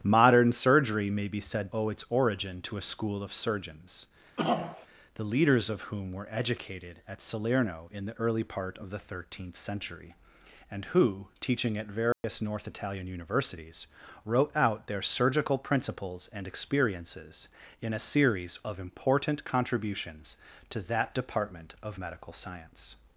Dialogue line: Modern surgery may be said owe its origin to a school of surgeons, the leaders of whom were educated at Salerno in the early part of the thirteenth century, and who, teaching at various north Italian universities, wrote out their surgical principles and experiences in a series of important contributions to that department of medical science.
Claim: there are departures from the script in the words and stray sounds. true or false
true